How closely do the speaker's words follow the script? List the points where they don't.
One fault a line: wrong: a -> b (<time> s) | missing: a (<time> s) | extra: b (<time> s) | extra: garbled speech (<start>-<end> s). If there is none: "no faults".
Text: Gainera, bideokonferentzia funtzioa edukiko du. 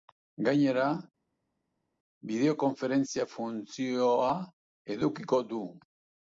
no faults